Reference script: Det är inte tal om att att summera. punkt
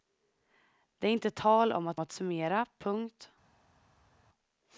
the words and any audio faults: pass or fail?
pass